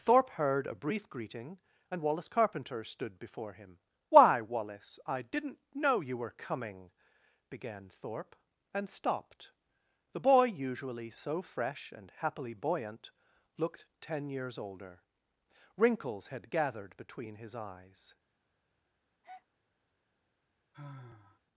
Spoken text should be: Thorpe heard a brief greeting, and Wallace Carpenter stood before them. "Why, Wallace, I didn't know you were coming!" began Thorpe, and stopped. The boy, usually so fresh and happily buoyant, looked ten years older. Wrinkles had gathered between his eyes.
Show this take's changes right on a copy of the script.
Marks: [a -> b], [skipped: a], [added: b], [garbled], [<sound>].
Thorpe heard a brief greeting, and Wallace Carpenter stood before [them. -> him] "Why, Wallace, I didn't know you were coming!" began Thorpe, and stopped. The boy, usually so fresh and happily buoyant, looked ten years older. Wrinkles had gathered between his eyes. [breath] [sigh]